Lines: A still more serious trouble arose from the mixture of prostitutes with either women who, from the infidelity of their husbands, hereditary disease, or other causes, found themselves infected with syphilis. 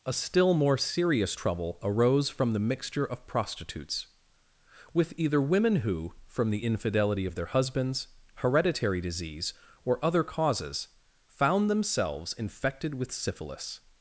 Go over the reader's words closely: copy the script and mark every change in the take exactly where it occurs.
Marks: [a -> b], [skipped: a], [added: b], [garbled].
A still more serious trouble arose from the mixture of prostitutes with either women who, from the infidelity of their husbands, hereditary disease, or other causes, found themselves infected with syphilis.